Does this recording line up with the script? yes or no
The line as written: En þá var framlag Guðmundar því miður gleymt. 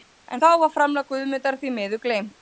yes